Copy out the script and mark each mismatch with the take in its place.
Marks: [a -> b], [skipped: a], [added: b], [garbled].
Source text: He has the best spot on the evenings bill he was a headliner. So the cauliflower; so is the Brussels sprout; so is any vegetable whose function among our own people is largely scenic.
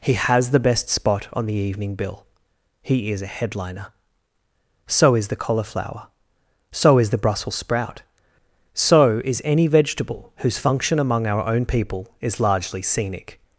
He has the best spot on the [evenings -> evening] bill he [was -> is] a headliner. So [added: is] the cauliflower; so is the Brussels sprout; so is any vegetable whose function among our own people is largely scenic.